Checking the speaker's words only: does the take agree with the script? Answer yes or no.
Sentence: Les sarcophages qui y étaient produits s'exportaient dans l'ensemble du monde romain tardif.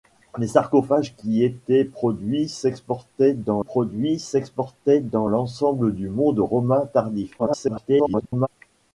no